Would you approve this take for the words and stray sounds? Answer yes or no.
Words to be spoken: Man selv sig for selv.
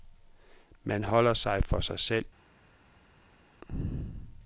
no